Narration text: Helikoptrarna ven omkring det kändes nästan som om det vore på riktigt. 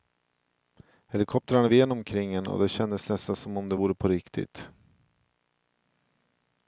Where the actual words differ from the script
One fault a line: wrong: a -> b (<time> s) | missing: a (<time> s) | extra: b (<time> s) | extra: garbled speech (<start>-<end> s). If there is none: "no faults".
extra: en och (2.3 s)